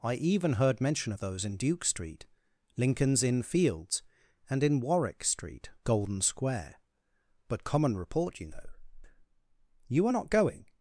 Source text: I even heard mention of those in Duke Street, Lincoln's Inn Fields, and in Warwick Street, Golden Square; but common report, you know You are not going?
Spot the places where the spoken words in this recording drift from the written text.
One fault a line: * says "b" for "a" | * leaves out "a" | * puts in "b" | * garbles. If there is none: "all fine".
all fine